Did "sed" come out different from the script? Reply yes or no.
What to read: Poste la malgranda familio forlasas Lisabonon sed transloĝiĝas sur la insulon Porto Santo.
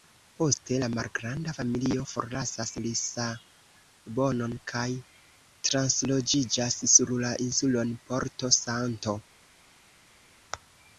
yes